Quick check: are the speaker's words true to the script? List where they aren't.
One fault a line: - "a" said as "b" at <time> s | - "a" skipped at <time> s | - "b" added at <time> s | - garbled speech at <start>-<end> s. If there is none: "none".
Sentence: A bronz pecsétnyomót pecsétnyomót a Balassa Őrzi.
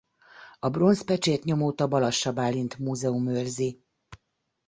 - "pecsétnyomót" skipped at 1.8 s
- "Bálint Múzeum" added at 2.3 s